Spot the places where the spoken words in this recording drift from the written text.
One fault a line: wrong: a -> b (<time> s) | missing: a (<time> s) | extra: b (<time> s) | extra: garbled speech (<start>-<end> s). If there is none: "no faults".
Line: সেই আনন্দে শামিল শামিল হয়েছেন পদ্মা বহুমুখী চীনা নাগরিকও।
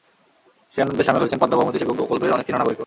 missing: শামিল (1.2 s)
extra: সেতু প্রকল্পের অনেক (1.8 s)